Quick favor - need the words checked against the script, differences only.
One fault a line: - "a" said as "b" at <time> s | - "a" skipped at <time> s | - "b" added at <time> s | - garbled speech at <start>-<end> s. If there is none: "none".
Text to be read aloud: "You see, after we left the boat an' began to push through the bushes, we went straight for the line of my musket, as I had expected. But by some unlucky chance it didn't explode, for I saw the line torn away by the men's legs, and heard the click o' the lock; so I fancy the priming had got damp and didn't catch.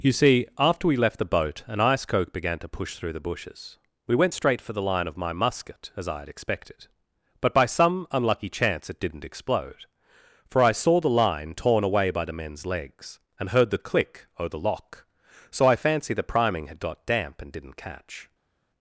- "ice coke" added at 1.8 s